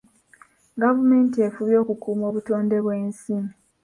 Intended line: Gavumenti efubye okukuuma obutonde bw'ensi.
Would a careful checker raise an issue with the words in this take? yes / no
no